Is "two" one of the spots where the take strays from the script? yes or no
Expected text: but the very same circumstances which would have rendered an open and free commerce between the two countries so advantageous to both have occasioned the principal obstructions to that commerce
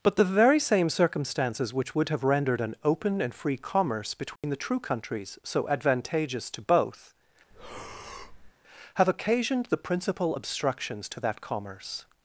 yes